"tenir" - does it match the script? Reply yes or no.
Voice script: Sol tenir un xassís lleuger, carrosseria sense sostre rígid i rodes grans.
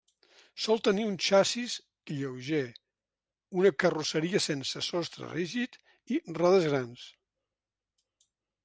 yes